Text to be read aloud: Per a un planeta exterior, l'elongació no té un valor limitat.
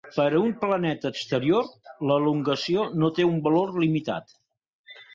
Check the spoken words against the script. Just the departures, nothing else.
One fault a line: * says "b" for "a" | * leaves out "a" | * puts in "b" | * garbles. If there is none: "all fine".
all fine